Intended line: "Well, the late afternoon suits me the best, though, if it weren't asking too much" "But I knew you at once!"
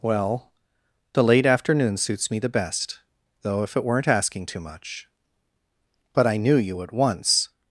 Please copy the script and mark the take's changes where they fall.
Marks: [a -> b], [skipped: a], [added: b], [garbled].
"Well, the late afternoon suits me the best, though, if it weren't asking too much" "But I knew you at once!"